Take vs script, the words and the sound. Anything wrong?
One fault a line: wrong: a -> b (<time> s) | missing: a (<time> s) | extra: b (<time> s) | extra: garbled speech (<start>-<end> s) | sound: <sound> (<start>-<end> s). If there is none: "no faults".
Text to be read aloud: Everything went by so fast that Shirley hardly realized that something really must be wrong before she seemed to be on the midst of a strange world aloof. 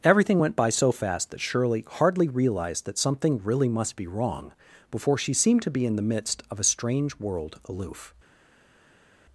wrong: on -> in (5.8 s)